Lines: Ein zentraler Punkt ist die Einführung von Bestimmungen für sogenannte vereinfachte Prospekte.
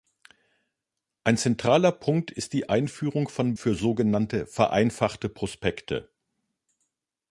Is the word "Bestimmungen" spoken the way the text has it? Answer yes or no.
no